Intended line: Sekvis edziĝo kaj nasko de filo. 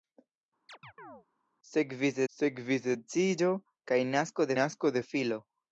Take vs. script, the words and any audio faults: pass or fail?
fail